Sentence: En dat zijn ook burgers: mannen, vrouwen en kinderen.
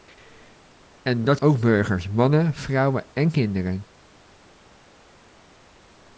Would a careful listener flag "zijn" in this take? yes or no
yes